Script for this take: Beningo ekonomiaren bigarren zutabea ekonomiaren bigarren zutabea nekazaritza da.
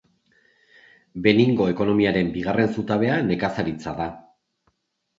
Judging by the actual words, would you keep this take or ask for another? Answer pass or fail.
fail